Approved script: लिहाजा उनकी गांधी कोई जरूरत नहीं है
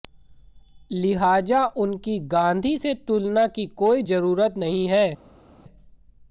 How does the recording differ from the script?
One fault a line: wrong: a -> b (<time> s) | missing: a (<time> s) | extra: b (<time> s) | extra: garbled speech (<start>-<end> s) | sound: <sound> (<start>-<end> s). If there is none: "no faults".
extra: से तुलना की (2.8 s)